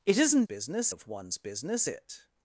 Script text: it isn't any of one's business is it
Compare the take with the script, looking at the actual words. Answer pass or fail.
fail